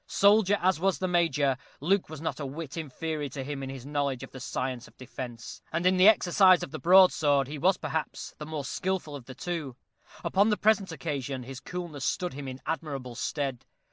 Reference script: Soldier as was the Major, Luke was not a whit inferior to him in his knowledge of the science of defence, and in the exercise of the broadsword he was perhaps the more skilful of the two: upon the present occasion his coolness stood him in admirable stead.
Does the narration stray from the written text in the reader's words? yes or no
no